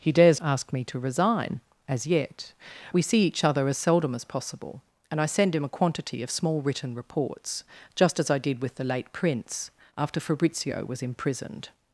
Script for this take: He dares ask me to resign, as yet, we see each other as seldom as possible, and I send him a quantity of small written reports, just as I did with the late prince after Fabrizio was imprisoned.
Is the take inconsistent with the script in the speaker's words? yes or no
no